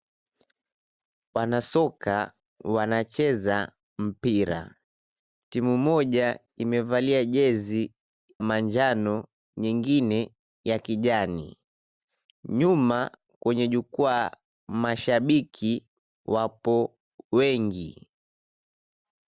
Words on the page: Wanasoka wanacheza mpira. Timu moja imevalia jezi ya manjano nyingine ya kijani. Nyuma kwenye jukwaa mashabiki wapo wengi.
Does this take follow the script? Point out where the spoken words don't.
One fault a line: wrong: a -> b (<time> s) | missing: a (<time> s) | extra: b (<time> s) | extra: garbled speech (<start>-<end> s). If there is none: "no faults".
missing: ya (7.9 s)